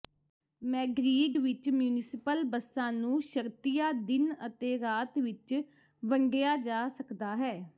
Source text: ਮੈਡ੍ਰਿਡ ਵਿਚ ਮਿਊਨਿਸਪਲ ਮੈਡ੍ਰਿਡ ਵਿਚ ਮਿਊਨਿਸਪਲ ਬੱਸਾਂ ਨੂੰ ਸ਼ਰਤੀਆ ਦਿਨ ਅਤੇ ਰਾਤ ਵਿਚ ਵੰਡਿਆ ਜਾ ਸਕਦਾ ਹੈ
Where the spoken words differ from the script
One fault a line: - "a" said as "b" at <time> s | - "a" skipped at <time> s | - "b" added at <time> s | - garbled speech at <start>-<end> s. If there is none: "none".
- "ਮੈਡ੍ਰਿਡ ਵਿਚ ਮਿਊਨਿਸਪਲ" skipped at 2.4 s